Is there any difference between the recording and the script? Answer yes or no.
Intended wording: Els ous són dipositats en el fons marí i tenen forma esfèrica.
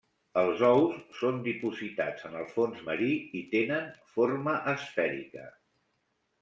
no